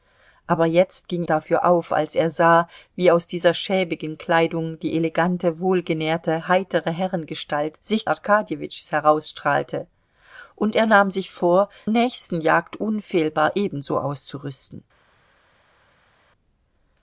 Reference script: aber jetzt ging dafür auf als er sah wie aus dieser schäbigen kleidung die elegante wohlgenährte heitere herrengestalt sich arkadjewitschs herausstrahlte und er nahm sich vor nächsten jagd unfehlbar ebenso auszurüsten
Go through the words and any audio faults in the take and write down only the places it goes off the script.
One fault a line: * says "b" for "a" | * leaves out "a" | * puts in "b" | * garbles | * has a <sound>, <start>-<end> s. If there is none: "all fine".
all fine